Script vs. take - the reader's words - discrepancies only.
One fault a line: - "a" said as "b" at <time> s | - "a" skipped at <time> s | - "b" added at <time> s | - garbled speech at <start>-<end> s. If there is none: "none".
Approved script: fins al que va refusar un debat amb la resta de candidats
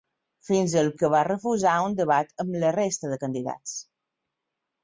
none